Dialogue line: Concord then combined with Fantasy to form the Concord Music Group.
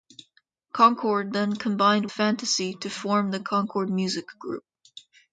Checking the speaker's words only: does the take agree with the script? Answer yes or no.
no